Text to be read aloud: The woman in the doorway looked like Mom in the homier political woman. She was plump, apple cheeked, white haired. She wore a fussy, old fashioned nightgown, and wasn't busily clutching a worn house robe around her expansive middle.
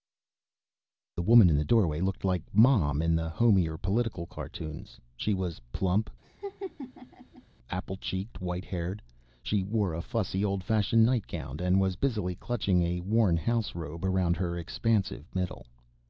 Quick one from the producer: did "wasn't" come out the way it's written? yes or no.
no